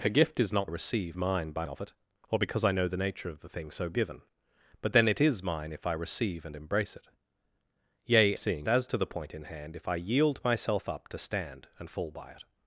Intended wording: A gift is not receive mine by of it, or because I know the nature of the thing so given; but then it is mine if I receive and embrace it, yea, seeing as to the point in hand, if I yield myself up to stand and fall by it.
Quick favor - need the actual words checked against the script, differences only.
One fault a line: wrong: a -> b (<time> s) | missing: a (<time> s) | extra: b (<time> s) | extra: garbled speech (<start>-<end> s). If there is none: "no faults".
no faults